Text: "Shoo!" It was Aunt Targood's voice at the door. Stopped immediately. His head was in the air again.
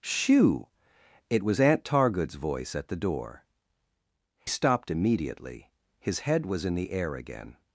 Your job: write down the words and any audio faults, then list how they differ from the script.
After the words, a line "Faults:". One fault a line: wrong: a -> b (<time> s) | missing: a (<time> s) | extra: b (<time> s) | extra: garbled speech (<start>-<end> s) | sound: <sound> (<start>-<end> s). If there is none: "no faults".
"Shoo!" It was Aunt Targood's voice at the door. Stopped immediately. His head was in the air again.
Faults:
no faults